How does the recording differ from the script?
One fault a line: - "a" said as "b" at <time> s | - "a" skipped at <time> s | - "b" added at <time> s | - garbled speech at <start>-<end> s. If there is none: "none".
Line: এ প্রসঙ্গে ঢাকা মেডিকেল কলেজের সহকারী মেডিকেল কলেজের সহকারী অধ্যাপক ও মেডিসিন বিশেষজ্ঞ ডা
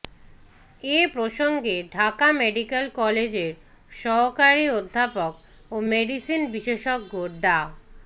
- "মেডিকেল কলেজের সহকারী" skipped at 4.7 s